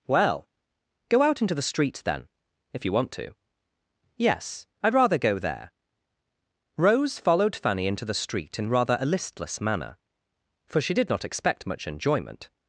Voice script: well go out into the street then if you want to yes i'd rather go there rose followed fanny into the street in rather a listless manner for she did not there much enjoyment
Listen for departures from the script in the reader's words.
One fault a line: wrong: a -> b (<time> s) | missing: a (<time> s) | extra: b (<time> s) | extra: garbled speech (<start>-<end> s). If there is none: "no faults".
wrong: there -> expect (11.2 s)